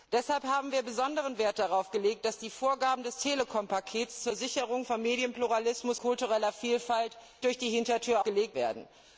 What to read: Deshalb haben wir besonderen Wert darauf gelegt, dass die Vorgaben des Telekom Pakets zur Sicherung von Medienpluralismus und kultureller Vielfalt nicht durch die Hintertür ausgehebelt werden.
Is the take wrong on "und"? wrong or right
wrong